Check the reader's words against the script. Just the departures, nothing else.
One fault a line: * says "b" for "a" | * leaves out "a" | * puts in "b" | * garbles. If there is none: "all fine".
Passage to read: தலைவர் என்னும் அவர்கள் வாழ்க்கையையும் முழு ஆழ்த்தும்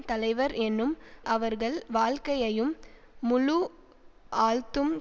all fine